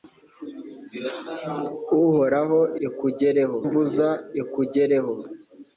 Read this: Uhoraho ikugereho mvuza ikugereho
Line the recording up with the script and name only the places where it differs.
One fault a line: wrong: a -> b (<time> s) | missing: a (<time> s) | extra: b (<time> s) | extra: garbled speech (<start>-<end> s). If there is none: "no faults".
no faults